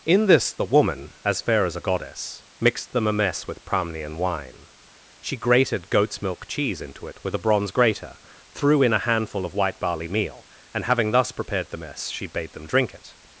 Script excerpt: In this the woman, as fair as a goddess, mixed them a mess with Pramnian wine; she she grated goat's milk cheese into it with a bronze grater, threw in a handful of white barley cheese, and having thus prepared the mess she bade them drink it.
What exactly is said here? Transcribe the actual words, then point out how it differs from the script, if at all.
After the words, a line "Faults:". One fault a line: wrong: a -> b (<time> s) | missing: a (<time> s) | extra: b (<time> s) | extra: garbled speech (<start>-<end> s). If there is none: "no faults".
In this the woman, as fair as a goddess, mixed them a mess with Pramnian wine; she grated goat's milk cheese into it with a bronze grater, threw in a handful of white barley meal, and having thus prepared the mess she bade them drink it.
Faults:
missing: she (5.4 s)
wrong: cheese -> meal (10.1 s)